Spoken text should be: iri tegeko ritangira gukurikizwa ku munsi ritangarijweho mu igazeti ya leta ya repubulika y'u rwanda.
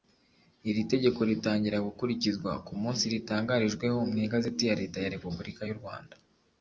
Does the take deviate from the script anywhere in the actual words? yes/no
no